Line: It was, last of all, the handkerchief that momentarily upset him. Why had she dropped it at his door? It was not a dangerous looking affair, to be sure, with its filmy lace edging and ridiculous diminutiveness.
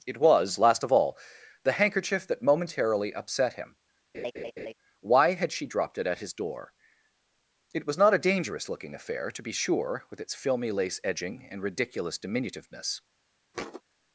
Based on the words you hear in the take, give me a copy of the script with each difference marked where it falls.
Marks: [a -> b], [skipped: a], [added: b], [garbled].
It was, last of all, the handkerchief that momentarily upset him. Why had she dropped it at his door? It was not a dangerous looking affair, to be sure, with its filmy lace edging and ridiculous diminutiveness.